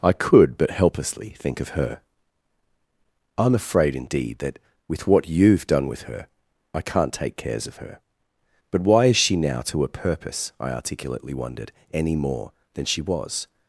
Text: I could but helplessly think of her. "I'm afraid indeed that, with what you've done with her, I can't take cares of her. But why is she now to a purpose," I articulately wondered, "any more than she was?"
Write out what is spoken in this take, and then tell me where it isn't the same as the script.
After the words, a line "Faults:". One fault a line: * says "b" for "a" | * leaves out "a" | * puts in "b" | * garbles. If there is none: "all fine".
I could but helplessly think of her. "I'm afraid indeed that, with what you've done with her, I can't take cares of her. But why is she now to a purpose," I articulately wondered, "any more than she was?"
Faults:
all fine